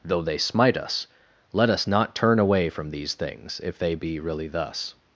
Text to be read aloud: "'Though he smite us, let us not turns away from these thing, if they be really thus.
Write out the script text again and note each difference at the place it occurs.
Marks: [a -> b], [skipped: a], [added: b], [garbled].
"'Though [he -> they] smite us, let us not [turns -> turn] away from these [thing, -> things] if they be really thus.